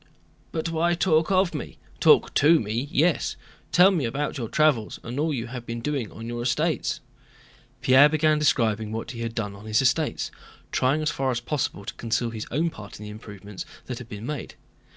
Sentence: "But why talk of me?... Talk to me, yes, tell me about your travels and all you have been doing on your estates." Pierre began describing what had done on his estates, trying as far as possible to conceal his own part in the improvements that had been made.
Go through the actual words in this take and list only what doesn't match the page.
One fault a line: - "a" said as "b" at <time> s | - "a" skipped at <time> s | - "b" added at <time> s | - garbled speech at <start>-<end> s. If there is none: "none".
- "he" added at 9.1 s